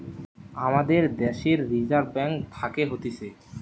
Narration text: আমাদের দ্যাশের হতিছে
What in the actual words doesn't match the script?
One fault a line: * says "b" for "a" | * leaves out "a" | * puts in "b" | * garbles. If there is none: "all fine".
* puts in "রিজার্ভ ব্যাঙ্ক থাকে"